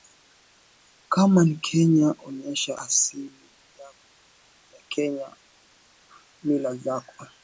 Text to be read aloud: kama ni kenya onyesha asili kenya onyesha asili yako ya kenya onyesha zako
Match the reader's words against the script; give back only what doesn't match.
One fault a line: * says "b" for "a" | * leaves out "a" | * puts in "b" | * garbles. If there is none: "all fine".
* leaves out "kenya onyesha asili"
* says "mila" for "onyesha"